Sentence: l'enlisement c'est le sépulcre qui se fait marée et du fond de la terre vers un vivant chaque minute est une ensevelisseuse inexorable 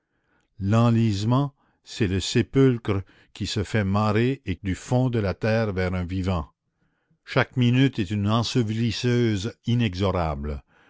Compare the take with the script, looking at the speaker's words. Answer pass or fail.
pass